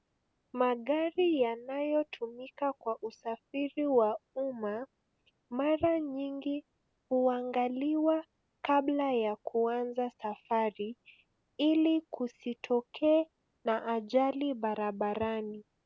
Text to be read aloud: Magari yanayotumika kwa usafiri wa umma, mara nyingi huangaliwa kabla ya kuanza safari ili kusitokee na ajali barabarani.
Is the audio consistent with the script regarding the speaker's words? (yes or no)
yes